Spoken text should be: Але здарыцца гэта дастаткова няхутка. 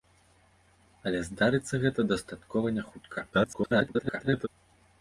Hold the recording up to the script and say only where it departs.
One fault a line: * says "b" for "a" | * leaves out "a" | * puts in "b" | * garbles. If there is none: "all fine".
* garbles